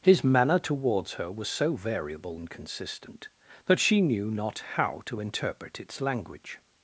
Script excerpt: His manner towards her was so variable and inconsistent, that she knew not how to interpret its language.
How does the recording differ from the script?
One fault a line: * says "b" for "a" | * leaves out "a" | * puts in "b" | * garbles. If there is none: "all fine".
* leaves out "and"